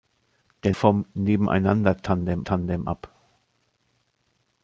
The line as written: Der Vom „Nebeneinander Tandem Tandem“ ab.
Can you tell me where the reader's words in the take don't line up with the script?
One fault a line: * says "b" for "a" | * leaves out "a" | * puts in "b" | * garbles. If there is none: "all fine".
all fine